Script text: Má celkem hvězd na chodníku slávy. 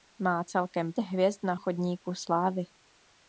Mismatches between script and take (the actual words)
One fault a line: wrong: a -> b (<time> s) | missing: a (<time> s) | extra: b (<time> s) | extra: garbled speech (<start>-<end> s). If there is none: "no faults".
no faults